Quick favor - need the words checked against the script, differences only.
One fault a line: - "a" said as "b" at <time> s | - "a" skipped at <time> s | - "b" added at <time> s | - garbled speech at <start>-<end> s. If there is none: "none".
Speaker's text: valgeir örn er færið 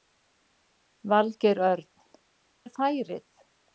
none